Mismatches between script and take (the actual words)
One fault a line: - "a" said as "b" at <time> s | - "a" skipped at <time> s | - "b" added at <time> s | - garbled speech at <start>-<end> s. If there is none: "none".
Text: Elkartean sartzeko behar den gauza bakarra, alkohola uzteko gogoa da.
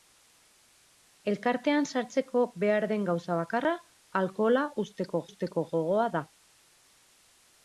- "uzteko" added at 5.3 s